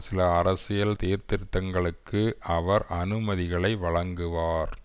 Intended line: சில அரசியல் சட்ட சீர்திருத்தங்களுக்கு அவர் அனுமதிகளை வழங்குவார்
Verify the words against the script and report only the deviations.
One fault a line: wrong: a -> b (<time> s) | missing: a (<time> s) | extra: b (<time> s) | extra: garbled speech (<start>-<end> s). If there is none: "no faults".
missing: சட்ட (0.9 s)